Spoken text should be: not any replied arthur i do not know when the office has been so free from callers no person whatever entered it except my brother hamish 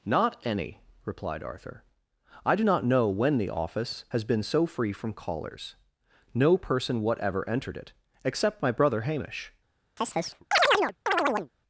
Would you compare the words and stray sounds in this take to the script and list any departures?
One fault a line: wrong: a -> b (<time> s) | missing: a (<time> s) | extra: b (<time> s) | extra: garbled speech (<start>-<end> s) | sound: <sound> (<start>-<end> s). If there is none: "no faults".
sound: chirp (10.0-11.5 s)